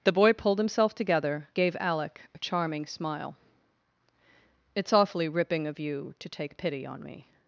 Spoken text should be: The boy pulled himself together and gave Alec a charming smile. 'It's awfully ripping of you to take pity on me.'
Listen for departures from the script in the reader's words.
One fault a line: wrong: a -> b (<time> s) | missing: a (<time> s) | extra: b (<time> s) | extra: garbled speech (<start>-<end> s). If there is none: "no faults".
missing: and (1.5 s)